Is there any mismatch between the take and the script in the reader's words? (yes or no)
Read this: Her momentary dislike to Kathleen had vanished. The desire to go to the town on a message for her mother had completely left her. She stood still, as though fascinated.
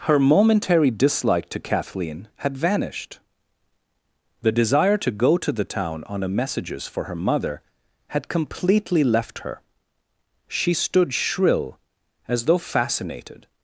yes